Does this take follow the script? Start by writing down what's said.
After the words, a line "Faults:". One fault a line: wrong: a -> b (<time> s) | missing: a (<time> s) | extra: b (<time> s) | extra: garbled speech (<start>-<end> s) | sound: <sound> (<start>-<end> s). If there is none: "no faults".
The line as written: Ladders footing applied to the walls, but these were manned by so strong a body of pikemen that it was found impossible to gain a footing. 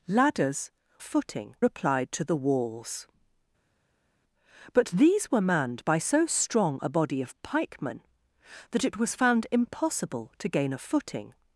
Ladders footing applied to the walls, but these were manned by so strong a body of pikemen that it was found impossible to gain a footing.
Faults:
no faults